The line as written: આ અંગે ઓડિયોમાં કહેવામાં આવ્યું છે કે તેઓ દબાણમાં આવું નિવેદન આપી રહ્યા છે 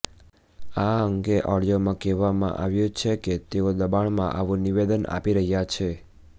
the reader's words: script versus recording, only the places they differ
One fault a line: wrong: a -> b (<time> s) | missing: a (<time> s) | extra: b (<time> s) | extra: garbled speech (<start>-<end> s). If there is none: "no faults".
no faults